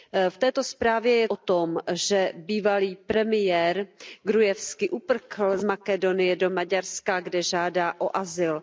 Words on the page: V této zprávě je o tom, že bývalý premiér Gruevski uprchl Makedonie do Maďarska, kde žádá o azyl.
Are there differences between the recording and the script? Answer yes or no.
no